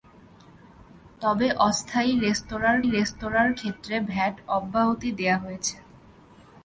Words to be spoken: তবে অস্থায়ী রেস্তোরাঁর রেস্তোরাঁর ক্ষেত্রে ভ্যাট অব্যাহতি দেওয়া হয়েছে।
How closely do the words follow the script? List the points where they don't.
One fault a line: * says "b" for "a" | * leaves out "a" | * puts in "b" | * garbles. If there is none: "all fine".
all fine